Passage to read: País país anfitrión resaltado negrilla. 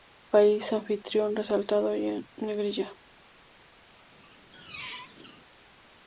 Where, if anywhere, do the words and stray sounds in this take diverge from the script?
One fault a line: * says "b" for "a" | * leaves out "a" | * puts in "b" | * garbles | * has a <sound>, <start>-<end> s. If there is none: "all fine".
* leaves out "país"
* puts in "y en"
* has a squeak, 4.1-5.4 s